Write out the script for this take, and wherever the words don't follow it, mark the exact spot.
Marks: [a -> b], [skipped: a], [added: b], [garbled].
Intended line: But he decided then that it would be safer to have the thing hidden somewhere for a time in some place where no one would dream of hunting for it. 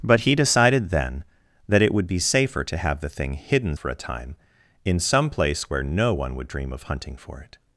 But he decided then that it would be safer to have the thing hidden [skipped: somewhere] for a time in some place where no one would dream of hunting for it.